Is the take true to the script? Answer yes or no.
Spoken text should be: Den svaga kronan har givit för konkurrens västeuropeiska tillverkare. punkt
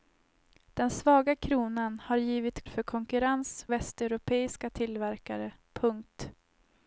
yes